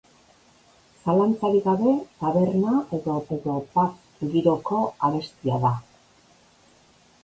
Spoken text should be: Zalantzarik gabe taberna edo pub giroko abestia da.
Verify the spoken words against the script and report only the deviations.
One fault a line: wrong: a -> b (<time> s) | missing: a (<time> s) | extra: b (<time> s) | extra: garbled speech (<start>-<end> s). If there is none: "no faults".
extra: edo (3.4 s)